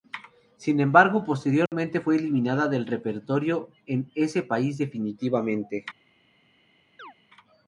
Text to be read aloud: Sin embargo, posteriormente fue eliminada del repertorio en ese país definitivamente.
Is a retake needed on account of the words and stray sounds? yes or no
yes